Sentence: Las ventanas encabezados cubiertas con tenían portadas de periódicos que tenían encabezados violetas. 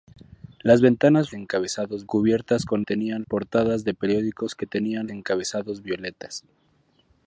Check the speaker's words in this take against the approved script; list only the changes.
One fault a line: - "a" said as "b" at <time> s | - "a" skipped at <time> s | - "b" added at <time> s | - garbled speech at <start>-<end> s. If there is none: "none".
none